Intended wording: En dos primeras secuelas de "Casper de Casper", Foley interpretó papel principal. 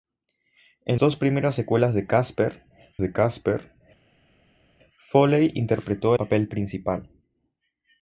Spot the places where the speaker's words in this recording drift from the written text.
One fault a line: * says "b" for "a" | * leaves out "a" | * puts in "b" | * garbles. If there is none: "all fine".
all fine